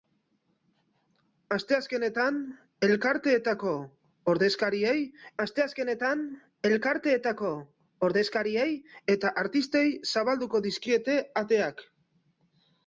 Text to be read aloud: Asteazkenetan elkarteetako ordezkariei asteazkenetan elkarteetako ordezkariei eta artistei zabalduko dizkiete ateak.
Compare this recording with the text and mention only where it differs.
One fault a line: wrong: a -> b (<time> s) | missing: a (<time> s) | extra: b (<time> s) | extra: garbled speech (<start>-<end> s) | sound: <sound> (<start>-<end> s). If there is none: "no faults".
no faults